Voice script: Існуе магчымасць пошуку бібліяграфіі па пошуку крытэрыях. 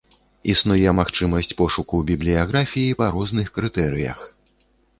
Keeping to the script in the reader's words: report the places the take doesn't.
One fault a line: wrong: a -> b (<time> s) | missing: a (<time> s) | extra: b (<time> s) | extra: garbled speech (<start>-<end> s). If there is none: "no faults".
wrong: пошуку -> розных (3.2 s)